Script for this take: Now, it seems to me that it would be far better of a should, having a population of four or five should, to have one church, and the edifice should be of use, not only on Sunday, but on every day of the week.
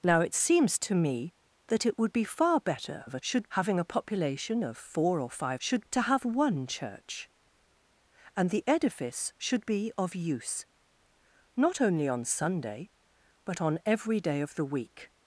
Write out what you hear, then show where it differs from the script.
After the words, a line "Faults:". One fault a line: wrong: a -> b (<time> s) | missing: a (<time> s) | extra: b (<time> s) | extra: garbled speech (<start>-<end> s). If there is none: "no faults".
Now, it seems to me that it would be far better of a should, having a population of four or five should, to have one church, and the edifice should be of use, not only on Sunday, but on every day of the week.
Faults:
no faults